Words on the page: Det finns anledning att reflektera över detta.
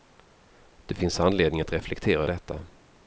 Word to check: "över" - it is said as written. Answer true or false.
false